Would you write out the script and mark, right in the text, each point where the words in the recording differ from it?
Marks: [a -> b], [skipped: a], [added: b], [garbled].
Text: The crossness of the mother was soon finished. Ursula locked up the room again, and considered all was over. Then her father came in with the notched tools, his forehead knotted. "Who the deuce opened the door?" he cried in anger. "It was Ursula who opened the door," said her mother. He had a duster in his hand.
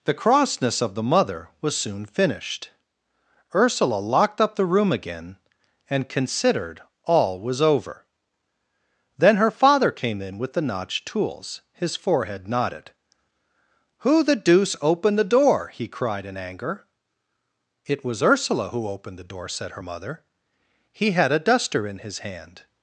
The crossness of the mother was soon finished. Ursula locked up the room again, and considered all was over. Then her father came in with the notched tools, his forehead knotted. "Who the deuce opened the door?" he cried in anger. "It was Ursula who opened the door," said her mother. He had a duster in his hand.